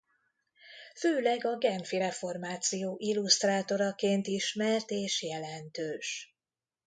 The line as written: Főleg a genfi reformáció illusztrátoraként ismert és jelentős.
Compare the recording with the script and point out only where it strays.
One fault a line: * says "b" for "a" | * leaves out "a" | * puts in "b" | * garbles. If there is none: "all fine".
all fine